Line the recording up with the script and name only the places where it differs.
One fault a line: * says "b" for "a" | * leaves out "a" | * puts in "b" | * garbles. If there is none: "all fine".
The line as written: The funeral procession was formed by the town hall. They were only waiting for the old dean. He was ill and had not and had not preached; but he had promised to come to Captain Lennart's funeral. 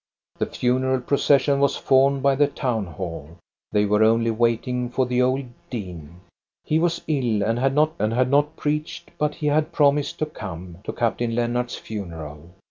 all fine